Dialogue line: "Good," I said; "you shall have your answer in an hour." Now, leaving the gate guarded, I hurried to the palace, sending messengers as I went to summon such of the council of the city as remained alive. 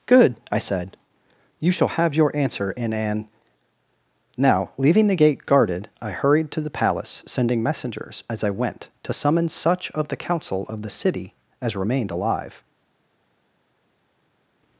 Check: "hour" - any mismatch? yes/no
yes